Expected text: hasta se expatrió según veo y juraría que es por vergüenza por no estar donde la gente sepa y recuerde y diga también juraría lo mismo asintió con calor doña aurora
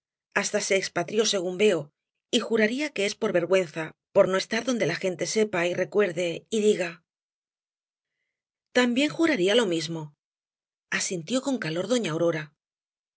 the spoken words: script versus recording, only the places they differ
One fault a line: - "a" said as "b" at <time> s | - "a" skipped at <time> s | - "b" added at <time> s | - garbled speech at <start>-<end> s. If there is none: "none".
none